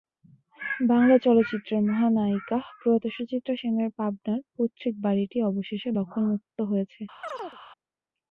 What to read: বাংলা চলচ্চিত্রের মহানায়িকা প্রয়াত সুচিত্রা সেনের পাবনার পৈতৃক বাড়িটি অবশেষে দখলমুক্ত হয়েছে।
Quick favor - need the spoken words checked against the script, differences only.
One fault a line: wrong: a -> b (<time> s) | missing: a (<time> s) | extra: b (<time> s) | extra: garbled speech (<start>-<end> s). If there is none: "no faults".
no faults